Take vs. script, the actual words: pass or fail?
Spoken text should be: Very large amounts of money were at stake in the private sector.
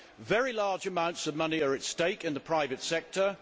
fail